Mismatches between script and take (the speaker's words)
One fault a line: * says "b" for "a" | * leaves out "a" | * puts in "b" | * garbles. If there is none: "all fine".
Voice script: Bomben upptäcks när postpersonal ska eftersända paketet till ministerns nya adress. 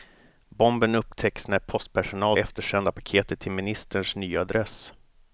* leaves out "ska"